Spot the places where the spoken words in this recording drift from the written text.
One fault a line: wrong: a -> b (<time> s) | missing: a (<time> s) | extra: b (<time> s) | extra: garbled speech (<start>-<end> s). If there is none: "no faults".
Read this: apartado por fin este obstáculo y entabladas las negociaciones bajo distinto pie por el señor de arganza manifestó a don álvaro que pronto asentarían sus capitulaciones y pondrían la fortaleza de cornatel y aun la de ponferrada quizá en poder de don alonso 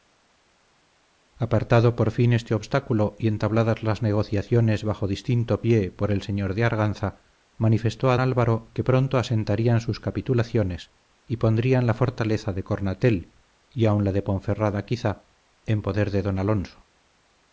missing: don (8.2 s)